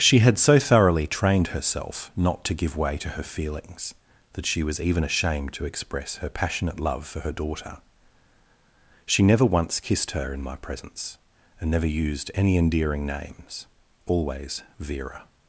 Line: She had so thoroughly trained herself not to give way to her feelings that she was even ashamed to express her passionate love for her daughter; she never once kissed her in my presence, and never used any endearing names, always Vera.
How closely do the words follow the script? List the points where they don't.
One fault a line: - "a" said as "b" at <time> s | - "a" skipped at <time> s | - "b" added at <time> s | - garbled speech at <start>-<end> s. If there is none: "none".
none